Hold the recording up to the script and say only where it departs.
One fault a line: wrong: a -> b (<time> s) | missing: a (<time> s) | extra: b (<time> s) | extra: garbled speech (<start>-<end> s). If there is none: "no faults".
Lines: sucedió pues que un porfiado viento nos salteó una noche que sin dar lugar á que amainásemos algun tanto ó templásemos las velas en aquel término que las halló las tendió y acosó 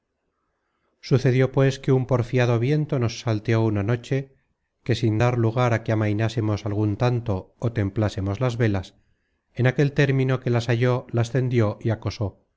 no faults